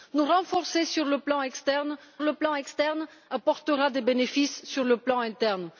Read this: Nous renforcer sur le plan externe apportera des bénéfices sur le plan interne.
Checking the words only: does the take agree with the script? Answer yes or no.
no